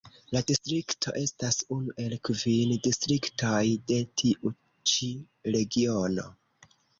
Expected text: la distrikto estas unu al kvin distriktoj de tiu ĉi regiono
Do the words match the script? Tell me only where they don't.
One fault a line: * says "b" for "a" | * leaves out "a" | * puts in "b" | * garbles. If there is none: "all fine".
* says "el" for "al"